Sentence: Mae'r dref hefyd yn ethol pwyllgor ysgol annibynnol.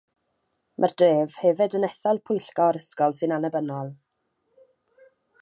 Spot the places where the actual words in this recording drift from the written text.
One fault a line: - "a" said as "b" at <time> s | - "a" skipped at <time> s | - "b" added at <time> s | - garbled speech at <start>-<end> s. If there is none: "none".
- "sy'n" added at 3.2 s